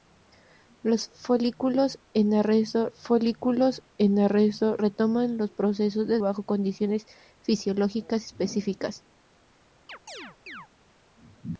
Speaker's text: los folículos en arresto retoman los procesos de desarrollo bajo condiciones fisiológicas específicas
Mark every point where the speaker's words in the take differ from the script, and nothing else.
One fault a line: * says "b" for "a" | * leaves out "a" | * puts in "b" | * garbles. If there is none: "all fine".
* puts in "folículos en arresto"
* leaves out "desarrollo"